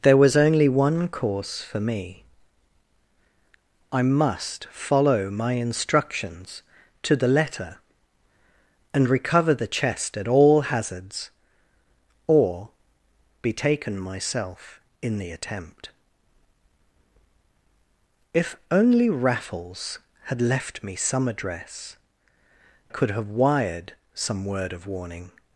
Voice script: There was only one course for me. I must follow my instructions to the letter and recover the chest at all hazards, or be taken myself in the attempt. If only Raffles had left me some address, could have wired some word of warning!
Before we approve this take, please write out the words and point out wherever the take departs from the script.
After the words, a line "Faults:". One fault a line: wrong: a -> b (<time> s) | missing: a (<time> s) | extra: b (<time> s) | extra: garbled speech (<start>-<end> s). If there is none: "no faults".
There was only one course for me. I must follow my instructions to the letter and recover the chest at all hazards, or be taken myself in the attempt. If only Raffles had left me some address, could have wired some word of warning!
Faults:
no faults